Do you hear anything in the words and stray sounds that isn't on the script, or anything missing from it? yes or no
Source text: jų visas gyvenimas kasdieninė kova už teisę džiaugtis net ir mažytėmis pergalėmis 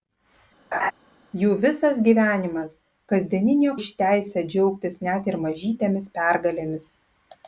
yes